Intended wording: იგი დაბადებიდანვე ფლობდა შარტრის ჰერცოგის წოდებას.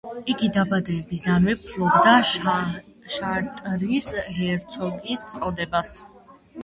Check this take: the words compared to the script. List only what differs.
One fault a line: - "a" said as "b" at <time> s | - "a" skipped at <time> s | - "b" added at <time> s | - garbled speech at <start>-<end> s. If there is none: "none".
none